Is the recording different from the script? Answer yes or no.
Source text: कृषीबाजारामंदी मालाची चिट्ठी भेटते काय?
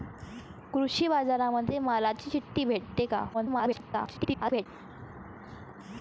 yes